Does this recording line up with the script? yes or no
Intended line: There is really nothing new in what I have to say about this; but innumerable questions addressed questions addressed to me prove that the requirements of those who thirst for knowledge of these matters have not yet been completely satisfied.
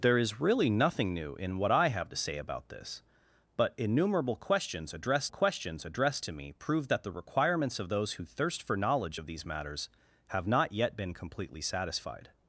yes